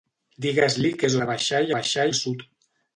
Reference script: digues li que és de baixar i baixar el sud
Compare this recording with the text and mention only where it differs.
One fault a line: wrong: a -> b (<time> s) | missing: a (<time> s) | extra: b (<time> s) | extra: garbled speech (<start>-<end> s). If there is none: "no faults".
no faults